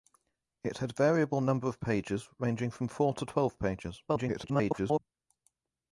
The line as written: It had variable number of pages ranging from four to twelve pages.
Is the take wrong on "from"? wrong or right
right